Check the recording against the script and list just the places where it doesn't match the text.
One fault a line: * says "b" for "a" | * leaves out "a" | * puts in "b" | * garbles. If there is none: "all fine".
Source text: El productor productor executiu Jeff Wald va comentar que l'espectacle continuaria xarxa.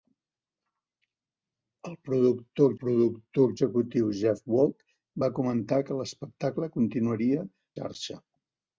all fine